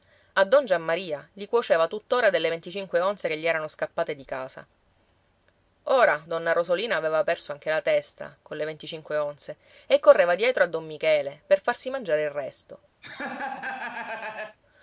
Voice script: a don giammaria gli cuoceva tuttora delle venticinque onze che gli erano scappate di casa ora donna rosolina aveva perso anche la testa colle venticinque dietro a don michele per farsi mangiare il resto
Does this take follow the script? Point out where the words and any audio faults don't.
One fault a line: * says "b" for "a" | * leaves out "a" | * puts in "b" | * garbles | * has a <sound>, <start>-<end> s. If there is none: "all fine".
* puts in "onze e correva"
* has a laugh, 13.0-14.6 s